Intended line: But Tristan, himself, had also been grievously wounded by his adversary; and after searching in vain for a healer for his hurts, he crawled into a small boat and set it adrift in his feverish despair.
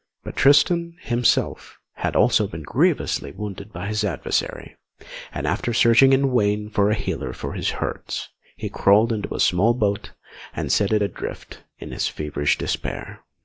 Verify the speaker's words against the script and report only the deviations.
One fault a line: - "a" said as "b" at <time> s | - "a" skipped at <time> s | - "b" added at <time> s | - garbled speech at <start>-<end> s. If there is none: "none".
none